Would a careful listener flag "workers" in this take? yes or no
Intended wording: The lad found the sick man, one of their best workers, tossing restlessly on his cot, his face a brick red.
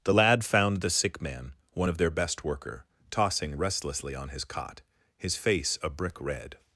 yes